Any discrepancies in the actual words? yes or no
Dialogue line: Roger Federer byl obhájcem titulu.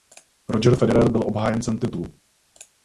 no